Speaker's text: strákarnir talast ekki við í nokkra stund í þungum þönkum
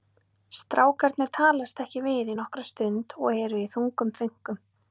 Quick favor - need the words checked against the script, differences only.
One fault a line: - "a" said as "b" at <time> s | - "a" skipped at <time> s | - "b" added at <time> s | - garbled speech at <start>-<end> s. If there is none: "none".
- "og eru" added at 3.2 s